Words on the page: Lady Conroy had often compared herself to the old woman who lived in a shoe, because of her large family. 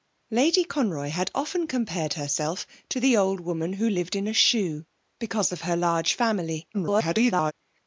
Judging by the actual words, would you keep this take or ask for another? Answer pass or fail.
fail